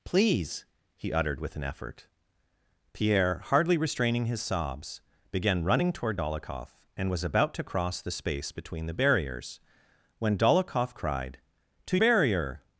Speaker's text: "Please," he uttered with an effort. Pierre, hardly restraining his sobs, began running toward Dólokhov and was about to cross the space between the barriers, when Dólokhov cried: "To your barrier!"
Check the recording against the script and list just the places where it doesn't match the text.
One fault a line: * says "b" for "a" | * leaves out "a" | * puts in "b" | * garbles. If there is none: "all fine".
* leaves out "your"